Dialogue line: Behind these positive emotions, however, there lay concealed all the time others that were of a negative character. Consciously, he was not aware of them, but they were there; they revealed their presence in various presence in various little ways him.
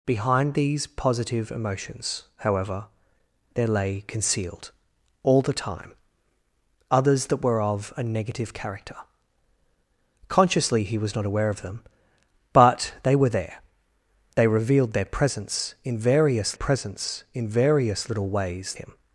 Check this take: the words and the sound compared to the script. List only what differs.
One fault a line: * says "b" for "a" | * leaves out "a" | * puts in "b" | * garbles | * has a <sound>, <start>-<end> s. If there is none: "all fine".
all fine